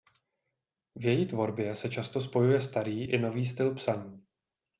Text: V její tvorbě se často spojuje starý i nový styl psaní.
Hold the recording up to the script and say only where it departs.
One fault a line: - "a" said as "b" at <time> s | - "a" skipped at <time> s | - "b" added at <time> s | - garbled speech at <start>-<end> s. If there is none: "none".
none